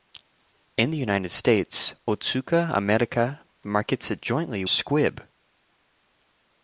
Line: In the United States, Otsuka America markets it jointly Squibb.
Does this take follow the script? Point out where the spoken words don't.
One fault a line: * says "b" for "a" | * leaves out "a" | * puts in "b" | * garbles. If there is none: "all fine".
all fine